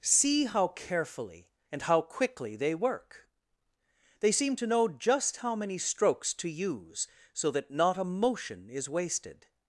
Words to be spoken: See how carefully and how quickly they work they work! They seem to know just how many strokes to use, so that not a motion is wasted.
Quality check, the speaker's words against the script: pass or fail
fail